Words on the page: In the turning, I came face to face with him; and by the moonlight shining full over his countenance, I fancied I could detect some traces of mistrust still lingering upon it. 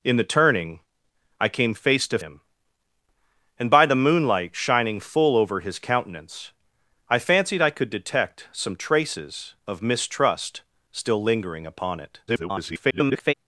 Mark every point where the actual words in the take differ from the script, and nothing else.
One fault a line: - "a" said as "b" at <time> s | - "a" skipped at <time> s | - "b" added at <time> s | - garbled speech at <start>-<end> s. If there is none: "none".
- "face with" skipped at 2.2 s
- garbled speech at 12.3-13.3 s